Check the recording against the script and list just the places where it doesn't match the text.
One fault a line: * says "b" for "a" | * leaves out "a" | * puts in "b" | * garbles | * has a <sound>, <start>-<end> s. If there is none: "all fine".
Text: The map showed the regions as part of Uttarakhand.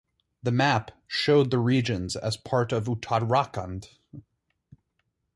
all fine